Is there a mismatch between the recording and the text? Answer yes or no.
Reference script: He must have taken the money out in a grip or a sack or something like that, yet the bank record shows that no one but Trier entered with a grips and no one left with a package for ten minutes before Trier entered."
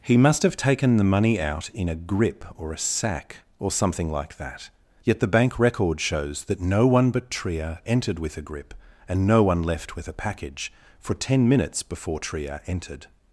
yes